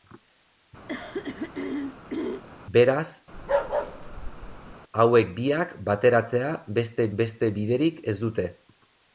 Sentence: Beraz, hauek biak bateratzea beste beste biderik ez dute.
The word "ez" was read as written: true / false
true